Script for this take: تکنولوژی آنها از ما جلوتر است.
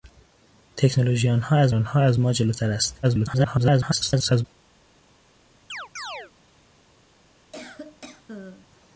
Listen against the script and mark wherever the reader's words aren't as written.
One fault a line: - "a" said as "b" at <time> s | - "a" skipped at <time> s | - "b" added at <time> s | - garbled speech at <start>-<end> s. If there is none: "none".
- "آنها از" added at 1.7 s
- garbled speech at 3.0-4.4 s